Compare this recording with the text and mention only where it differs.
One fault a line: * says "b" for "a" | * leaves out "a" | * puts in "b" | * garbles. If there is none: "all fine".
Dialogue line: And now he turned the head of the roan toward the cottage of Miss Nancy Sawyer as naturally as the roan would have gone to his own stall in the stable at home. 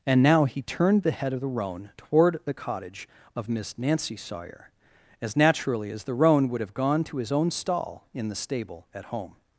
all fine